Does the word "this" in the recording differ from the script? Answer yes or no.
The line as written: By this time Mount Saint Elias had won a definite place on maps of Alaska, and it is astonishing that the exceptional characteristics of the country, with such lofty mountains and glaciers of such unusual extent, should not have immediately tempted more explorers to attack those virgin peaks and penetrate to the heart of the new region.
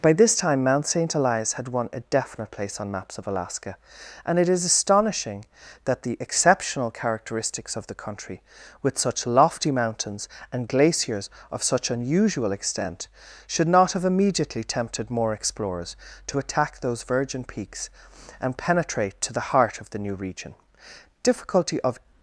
no